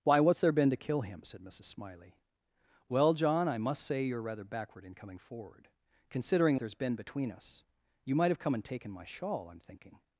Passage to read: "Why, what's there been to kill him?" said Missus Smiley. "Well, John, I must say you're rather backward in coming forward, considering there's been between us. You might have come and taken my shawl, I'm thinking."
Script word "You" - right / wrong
right